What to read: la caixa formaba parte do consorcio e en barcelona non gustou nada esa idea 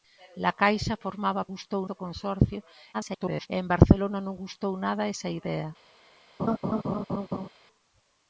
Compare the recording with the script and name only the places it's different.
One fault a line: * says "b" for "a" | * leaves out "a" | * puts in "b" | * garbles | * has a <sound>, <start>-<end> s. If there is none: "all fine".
* says "gustou" for "parte"
* garbles
* has a laugh, 6.4-7.5 s